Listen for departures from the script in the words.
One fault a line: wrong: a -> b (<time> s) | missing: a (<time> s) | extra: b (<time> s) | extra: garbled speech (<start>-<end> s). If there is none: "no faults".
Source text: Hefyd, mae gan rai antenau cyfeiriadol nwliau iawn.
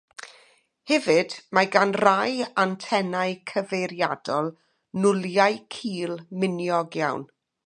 extra: cul miniog (5.8 s)